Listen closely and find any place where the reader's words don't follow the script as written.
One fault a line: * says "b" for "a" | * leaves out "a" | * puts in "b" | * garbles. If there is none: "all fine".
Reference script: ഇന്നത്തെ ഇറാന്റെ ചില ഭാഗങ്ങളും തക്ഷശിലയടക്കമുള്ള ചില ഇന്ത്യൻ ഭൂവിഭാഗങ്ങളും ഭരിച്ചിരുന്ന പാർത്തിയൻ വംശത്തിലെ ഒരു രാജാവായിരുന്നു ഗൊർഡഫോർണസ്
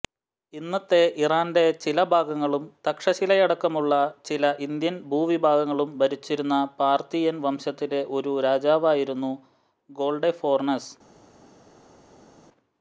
all fine